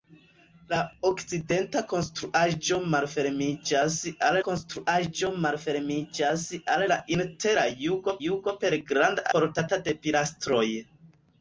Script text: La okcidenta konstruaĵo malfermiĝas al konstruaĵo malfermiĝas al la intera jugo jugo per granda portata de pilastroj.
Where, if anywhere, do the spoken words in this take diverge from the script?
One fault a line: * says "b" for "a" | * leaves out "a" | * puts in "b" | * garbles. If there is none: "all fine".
all fine